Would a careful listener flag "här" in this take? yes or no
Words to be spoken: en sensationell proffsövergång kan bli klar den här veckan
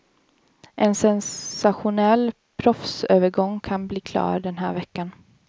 no